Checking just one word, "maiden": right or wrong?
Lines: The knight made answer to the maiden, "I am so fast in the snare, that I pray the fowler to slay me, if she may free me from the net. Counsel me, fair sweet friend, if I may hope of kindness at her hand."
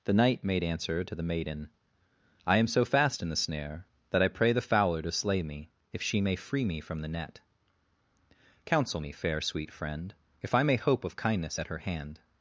right